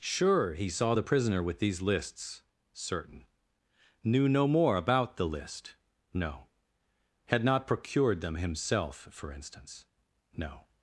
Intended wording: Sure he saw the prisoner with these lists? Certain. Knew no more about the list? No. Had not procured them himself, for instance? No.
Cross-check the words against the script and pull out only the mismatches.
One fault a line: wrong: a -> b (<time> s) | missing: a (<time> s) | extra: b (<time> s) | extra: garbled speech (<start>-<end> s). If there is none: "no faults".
no faults